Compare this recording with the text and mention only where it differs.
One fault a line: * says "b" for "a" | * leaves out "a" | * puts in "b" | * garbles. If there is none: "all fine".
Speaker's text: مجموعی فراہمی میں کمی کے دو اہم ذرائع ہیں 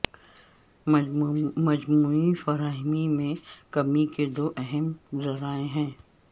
all fine